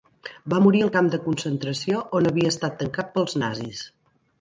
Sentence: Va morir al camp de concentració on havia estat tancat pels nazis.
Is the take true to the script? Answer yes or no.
yes